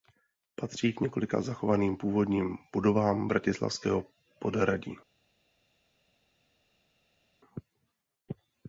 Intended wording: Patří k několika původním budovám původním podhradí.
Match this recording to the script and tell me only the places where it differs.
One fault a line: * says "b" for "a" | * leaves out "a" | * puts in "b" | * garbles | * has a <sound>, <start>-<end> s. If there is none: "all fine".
* puts in "zachovaným"
* says "bratislavského" for "původním"